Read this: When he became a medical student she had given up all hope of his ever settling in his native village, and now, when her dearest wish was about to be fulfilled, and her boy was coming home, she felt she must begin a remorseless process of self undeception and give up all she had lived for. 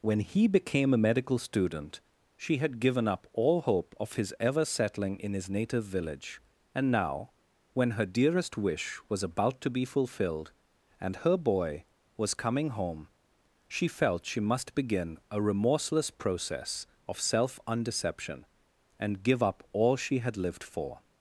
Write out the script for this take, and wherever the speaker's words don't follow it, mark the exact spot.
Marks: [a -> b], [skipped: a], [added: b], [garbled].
When he became a medical student she had given up all hope of his ever settling in his native village, and now, when her dearest wish was about to be fulfilled, and her boy was coming home, she felt she must begin a remorseless process of self undeception and give up all she had lived for.